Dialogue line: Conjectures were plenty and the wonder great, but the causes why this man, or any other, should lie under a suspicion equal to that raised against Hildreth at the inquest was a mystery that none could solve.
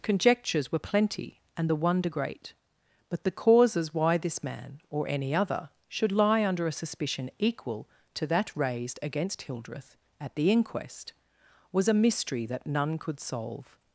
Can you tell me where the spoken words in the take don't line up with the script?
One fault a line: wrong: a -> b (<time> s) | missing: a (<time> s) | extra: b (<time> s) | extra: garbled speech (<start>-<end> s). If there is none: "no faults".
no faults